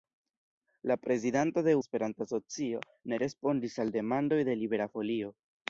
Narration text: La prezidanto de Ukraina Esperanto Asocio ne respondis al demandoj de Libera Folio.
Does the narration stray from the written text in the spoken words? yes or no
yes